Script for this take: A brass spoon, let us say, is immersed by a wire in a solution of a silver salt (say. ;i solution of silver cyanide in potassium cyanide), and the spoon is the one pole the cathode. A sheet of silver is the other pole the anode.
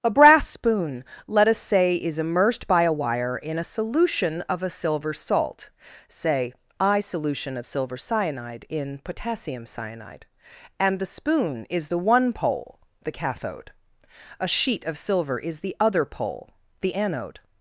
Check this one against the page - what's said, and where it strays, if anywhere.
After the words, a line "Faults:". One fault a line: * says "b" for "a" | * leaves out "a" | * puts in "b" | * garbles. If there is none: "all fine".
A brass spoon, let us say, is immersed by a wire in a solution of a silver salt (say. ;i solution of silver cyanide in potassium cyanide), and the spoon is the one pole the cathode. A sheet of silver is the other pole the anode.
Faults:
all fine